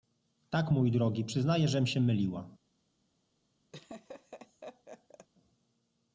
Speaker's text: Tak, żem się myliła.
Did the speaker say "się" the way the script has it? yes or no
yes